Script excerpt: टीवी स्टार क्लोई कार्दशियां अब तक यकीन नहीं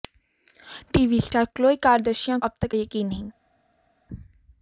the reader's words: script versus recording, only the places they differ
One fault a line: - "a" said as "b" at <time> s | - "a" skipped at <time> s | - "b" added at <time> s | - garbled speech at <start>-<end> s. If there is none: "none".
none